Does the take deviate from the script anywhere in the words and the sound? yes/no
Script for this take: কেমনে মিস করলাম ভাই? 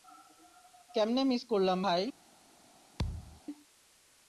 yes